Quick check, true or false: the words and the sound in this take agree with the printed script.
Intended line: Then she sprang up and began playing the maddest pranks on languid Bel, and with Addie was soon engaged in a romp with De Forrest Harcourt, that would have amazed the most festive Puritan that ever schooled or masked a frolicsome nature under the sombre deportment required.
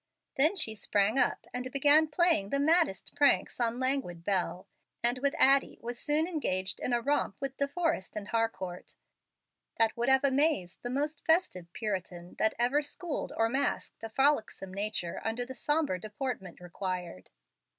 false